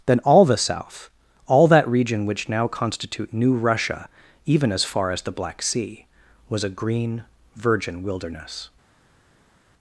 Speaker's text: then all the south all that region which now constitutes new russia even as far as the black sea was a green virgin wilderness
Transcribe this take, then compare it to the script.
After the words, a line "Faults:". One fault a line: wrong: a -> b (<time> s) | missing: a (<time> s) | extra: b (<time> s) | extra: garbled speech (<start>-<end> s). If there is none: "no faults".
then all the south all that region which now constitute new russia even as far as the black sea was a green virgin wilderness
Faults:
wrong: constitutes -> constitute (2.7 s)